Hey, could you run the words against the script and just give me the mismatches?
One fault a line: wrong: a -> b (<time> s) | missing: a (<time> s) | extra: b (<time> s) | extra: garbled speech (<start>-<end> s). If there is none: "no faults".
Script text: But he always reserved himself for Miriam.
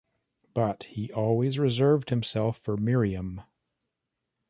no faults